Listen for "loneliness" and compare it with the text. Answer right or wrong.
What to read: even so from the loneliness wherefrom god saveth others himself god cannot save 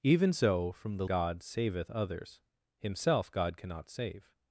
wrong